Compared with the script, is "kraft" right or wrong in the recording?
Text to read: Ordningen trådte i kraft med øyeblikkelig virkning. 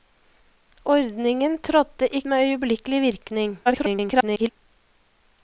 wrong